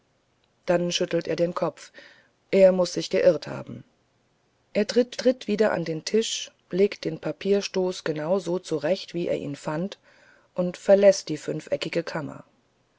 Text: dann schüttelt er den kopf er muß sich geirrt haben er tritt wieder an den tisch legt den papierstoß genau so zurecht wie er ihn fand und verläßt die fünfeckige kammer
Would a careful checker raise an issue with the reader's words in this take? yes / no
yes